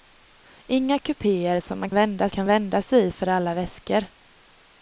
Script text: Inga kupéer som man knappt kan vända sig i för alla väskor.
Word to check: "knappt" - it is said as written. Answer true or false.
false